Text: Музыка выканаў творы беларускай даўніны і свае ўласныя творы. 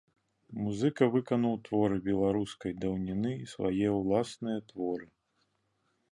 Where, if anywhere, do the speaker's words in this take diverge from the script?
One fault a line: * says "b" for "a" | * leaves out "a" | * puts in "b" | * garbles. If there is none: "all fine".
all fine